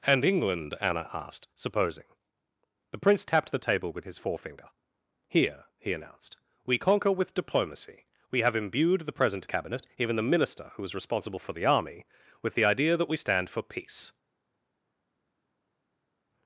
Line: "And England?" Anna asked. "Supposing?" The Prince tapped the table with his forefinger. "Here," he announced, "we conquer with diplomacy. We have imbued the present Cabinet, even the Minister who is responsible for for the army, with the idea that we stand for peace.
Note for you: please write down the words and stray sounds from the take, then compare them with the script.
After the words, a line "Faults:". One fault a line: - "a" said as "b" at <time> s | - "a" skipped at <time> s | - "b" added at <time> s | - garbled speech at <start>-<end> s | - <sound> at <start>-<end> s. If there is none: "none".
"And England?" Anna asked. "Supposing?" The Prince tapped the table with his forefinger. "Here," he announced, "we conquer with diplomacy. We have imbued the present Cabinet, even the Minister who is responsible for the army, with the idea that we stand for peace.
Faults:
- "for" skipped at 11.5 s